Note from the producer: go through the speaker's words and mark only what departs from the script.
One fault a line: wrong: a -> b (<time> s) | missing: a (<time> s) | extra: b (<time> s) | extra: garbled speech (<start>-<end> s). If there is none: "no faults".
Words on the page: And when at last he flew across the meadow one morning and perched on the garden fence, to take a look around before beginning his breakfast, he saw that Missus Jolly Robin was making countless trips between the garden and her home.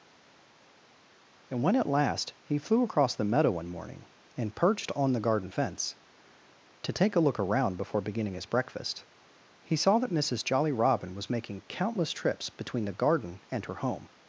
no faults